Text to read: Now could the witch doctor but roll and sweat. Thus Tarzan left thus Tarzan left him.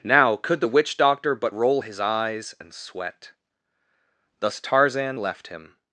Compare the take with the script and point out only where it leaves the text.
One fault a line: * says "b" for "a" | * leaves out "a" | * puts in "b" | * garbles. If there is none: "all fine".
* puts in "his eyes"
* leaves out "thus Tarzan left"